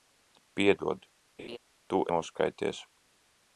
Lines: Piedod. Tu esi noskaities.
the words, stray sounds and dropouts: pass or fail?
fail